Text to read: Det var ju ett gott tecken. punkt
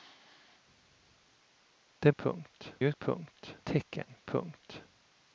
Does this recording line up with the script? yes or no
no